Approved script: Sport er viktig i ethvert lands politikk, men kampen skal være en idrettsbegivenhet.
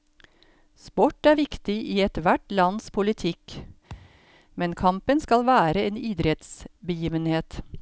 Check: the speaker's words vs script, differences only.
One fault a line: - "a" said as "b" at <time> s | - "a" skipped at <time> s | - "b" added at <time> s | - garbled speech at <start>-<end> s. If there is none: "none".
none